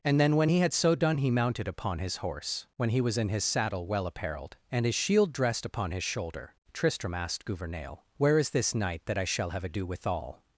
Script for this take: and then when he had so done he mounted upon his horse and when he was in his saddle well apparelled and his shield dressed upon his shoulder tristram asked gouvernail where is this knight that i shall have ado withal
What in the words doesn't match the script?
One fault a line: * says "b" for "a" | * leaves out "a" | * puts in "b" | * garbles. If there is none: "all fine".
* leaves out "and"